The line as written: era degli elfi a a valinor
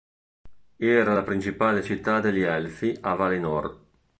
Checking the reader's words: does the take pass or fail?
fail